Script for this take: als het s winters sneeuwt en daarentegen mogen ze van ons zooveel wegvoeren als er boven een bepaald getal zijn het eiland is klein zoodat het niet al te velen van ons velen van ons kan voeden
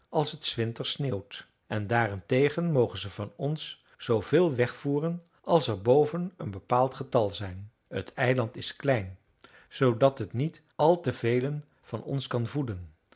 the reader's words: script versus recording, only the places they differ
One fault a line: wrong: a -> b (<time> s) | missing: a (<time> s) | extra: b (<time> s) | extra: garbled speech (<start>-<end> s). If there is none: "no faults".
missing: velen van ons (12.3 s)